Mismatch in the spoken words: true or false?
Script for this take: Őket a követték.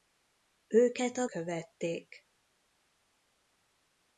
false